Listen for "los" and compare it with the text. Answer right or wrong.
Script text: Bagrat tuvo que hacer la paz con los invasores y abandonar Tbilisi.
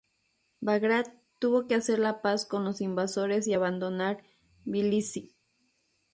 right